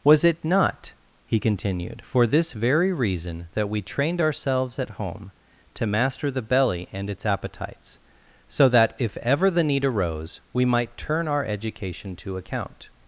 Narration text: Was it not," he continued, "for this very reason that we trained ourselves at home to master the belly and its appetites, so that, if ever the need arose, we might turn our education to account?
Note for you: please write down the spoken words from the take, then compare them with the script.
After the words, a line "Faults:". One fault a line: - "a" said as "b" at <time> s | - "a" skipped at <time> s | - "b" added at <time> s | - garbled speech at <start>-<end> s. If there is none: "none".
Was it not," he continued, "for this very reason that we trained ourselves at home to master the belly and its appetites, so that, if ever the need arose, we might turn our education to account?
Faults:
none